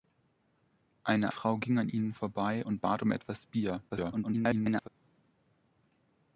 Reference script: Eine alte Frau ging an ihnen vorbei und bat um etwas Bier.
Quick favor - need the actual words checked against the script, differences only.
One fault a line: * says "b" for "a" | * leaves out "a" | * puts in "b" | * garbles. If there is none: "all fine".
* leaves out "alte"
* garbles